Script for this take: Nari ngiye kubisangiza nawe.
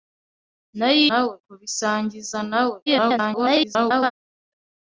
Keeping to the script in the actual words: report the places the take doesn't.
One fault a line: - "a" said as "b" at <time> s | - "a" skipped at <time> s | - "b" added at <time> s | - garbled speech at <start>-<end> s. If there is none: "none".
- "ngiye" said as "nawe" at 1.1 s
- garbled speech at 2.9-4.1 s